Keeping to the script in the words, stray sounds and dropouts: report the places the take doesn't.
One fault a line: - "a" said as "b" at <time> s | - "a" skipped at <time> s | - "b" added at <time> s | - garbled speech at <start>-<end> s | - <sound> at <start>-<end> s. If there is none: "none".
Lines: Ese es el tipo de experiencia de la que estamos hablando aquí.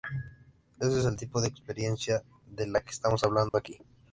- dropout at 3.5-3.5 s